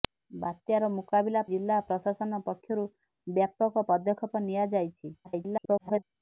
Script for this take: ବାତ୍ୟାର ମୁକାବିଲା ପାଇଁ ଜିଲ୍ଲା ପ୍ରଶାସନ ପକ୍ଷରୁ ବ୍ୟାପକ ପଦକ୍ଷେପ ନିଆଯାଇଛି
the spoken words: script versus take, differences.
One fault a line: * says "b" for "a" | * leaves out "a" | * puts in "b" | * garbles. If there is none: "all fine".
* leaves out "ପାଇଁ"
* garbles